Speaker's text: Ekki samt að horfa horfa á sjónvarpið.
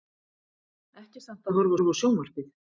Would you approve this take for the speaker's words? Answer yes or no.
yes